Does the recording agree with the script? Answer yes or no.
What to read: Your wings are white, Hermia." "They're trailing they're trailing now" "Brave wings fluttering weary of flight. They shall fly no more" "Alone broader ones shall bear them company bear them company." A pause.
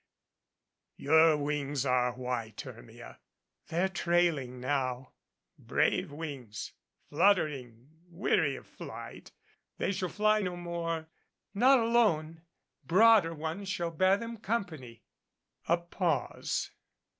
no